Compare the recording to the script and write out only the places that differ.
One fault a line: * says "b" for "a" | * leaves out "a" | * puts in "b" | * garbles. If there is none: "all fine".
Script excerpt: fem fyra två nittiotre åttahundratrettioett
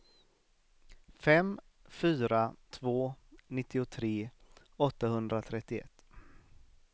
all fine